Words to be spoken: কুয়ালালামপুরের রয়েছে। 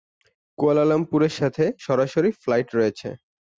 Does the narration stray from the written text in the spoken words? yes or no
yes